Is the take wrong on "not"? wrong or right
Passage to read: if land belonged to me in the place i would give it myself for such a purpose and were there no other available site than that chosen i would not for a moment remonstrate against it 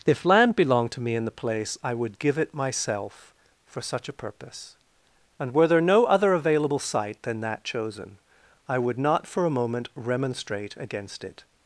right